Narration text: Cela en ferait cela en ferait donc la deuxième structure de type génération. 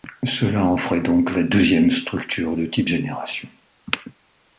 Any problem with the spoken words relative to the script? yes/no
yes